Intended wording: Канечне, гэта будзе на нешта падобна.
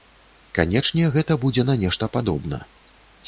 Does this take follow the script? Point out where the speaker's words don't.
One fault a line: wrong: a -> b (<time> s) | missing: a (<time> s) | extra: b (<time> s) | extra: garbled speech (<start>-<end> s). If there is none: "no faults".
no faults